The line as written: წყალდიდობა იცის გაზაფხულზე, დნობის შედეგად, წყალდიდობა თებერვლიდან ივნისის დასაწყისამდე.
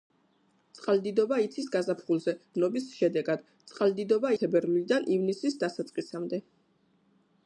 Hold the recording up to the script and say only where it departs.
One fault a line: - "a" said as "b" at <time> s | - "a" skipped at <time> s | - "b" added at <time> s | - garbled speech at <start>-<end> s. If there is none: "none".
none